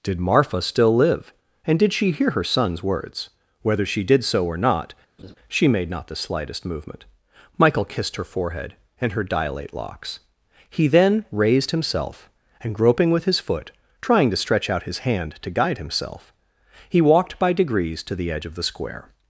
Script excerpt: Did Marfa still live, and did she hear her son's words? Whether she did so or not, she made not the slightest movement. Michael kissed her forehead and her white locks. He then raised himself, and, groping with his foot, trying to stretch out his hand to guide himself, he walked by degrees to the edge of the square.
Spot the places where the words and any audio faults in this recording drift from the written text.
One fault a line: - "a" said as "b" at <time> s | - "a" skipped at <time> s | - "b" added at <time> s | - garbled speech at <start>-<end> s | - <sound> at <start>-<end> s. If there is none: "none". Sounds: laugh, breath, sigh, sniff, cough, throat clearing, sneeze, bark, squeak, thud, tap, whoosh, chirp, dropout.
- laugh at 5.2-5.4 s
- "white" said as "dilate" at 9.2 s